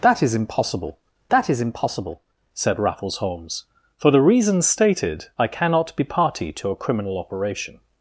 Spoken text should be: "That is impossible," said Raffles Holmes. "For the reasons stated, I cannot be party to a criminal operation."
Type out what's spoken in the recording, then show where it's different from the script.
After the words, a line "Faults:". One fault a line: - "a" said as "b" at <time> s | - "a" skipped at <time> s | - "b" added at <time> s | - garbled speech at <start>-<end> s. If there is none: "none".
"That is impossible that is impossible," said Raffles Holmes. "For the reasons stated, I cannot be party to a criminal operation."
Faults:
- "that is impossible" added at 1.3 s